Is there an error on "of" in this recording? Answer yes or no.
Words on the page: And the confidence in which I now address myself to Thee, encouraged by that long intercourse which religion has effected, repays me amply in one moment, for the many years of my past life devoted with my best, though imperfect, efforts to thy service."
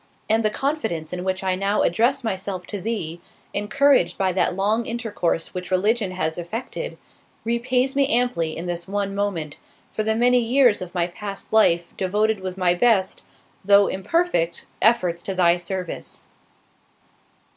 no